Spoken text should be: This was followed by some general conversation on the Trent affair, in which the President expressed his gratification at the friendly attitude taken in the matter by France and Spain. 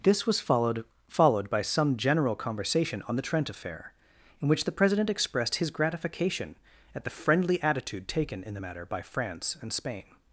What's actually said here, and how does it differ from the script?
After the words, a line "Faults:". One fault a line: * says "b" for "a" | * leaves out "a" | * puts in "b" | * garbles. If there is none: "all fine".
This was followed followed by some general conversation on the Trent affair, in which the President expressed his gratification at the friendly attitude taken in the matter by France and Spain.
Faults:
* puts in "followed"